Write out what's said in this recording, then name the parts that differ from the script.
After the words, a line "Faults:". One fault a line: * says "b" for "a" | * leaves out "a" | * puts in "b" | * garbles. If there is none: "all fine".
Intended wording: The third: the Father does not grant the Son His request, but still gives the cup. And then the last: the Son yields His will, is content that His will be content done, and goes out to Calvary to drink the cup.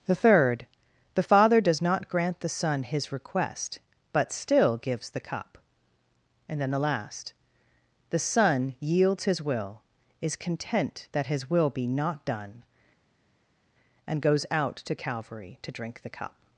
The third: the Father does not grant the Son His request, but still gives the cup. And then the last: the Son yields His will, is content that His will be not done, and goes out to Calvary to drink the cup.
Faults:
* says "not" for "content"